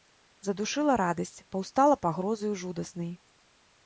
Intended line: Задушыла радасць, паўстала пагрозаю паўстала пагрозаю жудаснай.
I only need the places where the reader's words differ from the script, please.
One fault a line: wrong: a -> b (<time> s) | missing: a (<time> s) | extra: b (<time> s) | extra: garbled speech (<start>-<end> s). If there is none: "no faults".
missing: паўстала пагрозаю (2.5 s)